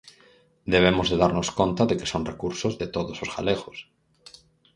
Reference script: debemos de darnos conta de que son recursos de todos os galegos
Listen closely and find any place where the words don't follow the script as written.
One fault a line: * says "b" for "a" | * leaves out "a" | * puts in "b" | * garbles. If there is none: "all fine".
all fine